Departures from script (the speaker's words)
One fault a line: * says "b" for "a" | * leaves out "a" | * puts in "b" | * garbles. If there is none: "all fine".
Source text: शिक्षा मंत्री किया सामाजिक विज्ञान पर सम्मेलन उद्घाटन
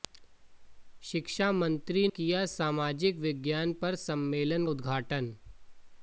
all fine